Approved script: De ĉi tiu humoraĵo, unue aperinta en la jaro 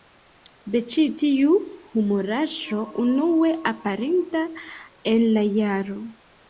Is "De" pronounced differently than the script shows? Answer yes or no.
no